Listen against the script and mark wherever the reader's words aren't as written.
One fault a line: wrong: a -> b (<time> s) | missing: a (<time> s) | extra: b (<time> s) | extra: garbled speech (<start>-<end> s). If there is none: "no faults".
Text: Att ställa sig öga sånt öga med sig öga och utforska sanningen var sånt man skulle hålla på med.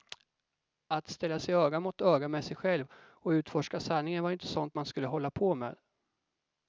wrong: sånt -> mot (1.8 s)
wrong: öga -> själv (2.5 s)
extra: inte (4.3 s)